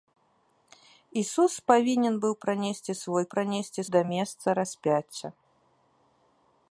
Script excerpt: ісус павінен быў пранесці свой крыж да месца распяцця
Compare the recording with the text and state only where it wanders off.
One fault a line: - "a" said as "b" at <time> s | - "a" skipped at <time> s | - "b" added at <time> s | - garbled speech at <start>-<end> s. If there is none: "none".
- "крыж" said as "пранесці" at 3.3 s